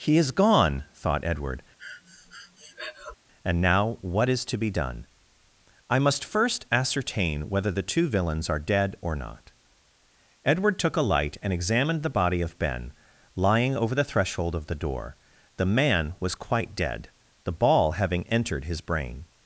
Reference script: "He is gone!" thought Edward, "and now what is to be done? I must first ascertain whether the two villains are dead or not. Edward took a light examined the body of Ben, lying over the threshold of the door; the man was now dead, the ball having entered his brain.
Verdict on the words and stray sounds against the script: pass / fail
fail